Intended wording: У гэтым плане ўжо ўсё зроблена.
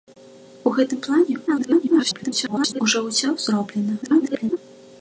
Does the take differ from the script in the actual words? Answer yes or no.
yes